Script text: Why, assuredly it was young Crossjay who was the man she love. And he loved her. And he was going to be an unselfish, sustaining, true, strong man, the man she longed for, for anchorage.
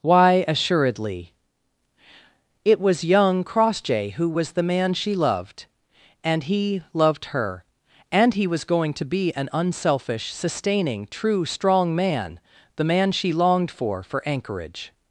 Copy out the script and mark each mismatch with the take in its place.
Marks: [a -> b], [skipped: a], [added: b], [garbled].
Why, assuredly it was young Crossjay who was the man she [love. -> loved] And he loved her. And he was going to be an unselfish, sustaining, true, strong man, the man she longed for, for anchorage.